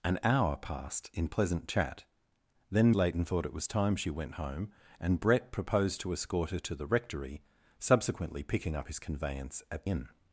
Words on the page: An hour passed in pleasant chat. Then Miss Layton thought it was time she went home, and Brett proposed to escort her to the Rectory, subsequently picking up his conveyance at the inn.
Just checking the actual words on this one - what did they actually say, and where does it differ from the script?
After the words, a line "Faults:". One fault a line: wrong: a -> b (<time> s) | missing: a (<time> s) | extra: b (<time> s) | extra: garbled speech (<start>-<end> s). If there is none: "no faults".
An hour passed in pleasant chat. Then Layton thought it was time she went home, and Brett proposed to escort her to the Rectory, subsequently picking up his conveyance at inn.
Faults:
missing: Miss (2.9 s)
missing: the (9.9 s)